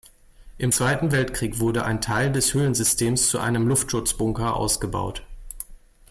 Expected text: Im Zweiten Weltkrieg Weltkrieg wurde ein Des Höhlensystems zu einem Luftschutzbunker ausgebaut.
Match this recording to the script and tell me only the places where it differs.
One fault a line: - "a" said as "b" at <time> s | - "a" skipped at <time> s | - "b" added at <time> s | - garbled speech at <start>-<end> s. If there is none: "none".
- "Weltkrieg" skipped at 1.6 s
- "Teil" added at 2.0 s